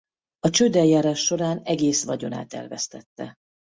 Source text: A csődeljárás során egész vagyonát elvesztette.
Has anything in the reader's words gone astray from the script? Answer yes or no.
no